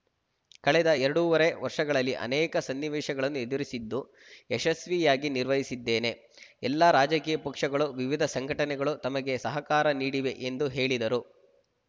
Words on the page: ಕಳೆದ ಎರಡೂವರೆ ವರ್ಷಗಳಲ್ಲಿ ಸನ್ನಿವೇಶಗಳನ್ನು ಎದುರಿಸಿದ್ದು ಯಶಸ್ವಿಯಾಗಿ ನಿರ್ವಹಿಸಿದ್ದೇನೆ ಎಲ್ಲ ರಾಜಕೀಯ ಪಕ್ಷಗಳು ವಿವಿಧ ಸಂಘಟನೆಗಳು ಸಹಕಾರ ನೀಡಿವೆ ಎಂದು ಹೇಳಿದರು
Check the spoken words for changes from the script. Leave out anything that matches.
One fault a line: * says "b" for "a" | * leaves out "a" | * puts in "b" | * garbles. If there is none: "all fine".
* puts in "ಅನೇಕ"
* puts in "ತಮಗೆ"